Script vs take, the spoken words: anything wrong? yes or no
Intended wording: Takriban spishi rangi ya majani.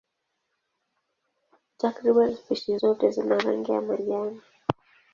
yes